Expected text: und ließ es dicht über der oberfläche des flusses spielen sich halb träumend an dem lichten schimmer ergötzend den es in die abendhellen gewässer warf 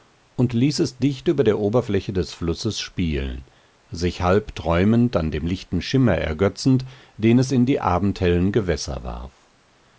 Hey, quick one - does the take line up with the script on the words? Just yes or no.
yes